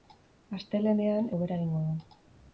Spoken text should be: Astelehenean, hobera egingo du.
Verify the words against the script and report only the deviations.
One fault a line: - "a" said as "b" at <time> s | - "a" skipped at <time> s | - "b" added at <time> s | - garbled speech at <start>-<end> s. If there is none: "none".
none